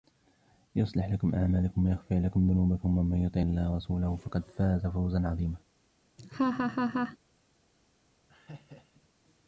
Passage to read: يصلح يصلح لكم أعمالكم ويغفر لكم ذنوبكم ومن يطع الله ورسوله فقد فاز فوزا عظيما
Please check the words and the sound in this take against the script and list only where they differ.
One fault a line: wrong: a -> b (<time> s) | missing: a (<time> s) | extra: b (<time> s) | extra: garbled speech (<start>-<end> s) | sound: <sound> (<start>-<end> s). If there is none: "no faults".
missing: يصلح (1.1 s)
sound: laugh (6.2-7.2 s)
sound: laugh (8.3-9.1 s)